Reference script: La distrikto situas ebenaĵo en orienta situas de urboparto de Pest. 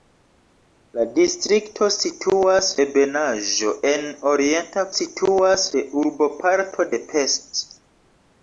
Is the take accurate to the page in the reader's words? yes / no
yes